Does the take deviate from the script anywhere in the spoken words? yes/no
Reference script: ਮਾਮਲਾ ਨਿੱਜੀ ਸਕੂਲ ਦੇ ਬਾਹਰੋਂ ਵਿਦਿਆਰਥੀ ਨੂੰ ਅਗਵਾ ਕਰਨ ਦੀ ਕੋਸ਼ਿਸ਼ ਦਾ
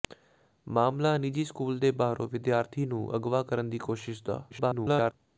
yes